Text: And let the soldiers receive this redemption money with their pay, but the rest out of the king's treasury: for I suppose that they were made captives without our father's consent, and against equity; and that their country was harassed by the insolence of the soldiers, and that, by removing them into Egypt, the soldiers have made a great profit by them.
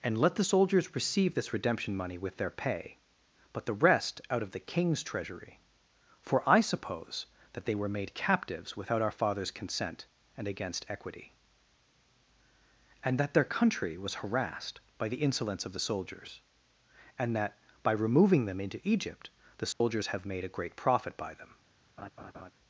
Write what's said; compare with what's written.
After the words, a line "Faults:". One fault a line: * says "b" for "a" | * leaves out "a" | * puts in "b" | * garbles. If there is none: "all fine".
And let the soldiers receive this redemption money with their pay, but the rest out of the king's treasury: for I suppose that they were made captives without our father's consent, and against equity; and that their country was harassed by the insolence of the soldiers, and that, by removing them into Egypt, the soldiers have made a great profit by them.
Faults:
all fine